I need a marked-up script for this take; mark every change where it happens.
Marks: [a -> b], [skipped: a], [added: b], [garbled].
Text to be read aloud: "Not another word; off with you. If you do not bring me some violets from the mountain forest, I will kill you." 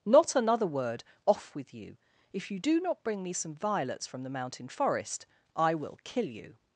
"Not another word; off with you. If you do not bring me some violets from the mountain forest, I will kill you."